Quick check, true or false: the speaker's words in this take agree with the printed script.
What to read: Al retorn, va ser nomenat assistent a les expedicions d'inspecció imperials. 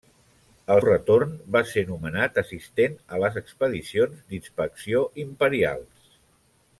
true